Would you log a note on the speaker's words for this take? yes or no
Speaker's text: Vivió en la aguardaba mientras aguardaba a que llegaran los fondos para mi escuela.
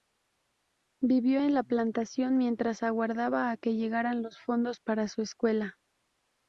yes